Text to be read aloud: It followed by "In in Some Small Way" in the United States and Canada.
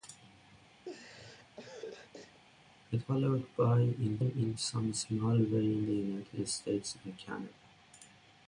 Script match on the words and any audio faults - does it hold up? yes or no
no